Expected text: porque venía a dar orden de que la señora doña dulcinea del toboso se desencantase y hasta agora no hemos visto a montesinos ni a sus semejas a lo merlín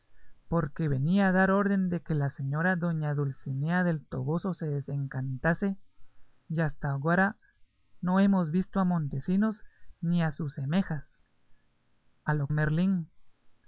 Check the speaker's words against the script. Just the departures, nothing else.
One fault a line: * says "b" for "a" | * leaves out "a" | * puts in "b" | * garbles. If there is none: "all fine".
all fine